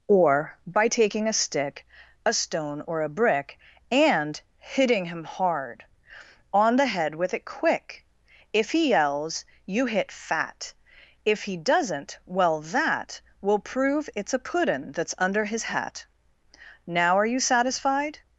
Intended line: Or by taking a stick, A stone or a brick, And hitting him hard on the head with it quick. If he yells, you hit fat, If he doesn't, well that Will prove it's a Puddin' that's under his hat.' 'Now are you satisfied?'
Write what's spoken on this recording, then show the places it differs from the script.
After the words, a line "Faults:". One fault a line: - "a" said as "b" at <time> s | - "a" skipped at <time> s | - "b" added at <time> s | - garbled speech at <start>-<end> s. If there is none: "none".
Or by taking a stick, A stone or a brick, And hitting him hard on the head with it quick. If he yells, you hit fat, If he doesn't, well that Will prove it's a Puddin' that's under his hat.' 'Now are you satisfied?'
Faults:
none